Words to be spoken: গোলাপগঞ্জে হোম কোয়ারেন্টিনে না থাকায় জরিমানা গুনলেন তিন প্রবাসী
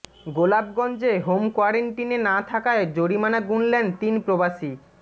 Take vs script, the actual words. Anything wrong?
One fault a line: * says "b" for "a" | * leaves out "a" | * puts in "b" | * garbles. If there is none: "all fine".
all fine